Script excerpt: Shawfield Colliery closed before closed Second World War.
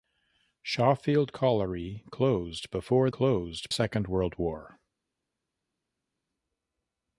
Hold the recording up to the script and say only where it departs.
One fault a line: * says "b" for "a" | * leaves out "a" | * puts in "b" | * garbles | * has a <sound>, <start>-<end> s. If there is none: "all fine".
all fine